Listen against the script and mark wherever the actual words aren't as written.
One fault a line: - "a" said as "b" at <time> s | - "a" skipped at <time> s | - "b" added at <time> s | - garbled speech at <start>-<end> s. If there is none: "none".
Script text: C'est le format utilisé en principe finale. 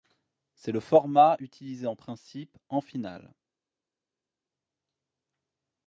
- "en" added at 2.7 s